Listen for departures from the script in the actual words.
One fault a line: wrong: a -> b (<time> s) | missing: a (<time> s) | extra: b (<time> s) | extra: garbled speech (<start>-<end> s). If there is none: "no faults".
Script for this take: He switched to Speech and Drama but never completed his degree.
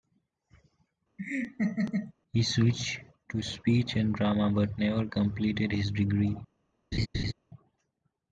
no faults